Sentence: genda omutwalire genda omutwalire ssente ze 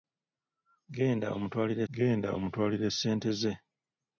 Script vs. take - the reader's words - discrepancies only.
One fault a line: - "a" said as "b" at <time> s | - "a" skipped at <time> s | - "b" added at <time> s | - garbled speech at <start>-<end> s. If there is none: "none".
none